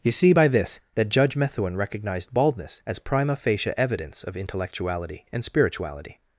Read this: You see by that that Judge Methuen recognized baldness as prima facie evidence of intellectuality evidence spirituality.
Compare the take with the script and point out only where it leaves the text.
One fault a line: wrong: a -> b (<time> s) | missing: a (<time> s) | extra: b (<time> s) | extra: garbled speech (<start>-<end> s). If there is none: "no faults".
wrong: that -> this (0.5 s)
wrong: evidence -> and (5.3 s)